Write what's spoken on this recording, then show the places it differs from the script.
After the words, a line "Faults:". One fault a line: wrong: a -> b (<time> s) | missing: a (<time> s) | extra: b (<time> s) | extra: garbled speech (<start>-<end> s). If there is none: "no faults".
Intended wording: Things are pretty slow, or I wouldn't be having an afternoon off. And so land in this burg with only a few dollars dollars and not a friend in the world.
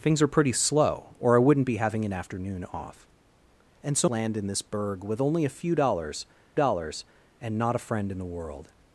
Things are pretty slow, or I wouldn't be having an afternoon off. And so land in this burg with only a few dollars dollars and not a friend in the world.
Faults:
no faults